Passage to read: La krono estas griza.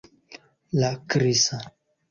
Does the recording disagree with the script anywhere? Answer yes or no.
yes